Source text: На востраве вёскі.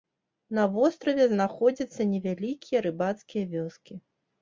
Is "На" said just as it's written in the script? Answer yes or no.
yes